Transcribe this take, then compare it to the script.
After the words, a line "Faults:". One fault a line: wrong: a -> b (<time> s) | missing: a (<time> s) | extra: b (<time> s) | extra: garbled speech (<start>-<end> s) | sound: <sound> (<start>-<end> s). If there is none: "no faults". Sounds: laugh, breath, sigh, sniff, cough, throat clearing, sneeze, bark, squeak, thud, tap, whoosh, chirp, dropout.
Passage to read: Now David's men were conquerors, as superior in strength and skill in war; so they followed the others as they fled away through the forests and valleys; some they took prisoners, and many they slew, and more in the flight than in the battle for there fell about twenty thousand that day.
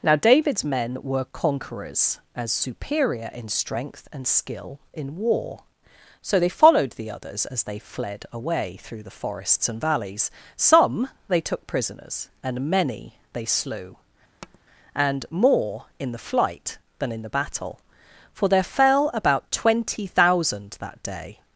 Now David's men were conquerors, as superior in strength and skill in war; so they followed the others as they fled away through the forests and valleys; some they took prisoners, and many they slew, and more in the flight than in the battle for there fell about twenty thousand that day.
Faults:
sound: tap (14.4-14.6 s)